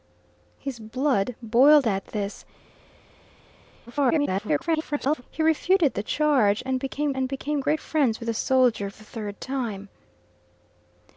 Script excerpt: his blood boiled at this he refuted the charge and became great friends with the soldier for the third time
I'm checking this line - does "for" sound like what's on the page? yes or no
no